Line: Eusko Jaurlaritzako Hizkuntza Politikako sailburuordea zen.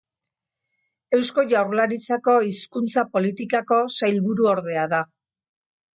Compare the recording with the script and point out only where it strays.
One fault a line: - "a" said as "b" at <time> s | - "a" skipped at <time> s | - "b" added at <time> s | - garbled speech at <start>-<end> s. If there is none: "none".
- "zen" said as "da" at 5.0 s